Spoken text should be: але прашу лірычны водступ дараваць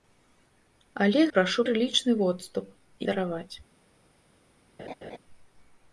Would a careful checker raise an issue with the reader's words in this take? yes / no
no